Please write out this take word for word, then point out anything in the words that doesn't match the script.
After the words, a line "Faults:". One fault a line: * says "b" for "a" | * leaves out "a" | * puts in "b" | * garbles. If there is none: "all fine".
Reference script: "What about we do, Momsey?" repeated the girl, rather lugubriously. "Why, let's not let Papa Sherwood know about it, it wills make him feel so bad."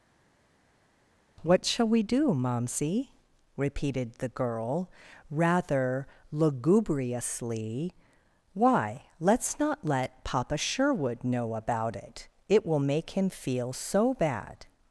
"What shall we do, Momsey?" repeated the girl, rather lugubriously. "Why, let's not let Papa Sherwood know about it, it will make him feel so bad."
Faults:
* says "shall" for "about"
* says "will" for "wills"